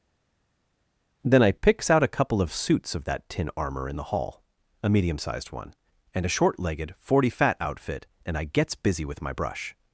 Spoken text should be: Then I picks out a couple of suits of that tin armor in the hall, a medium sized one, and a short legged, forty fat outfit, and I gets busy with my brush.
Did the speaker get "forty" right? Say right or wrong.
right